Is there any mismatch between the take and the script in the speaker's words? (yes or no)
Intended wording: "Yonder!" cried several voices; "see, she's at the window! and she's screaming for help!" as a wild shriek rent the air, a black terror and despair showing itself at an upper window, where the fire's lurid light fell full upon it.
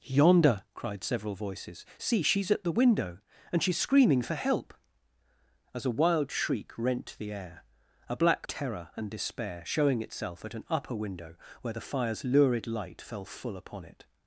no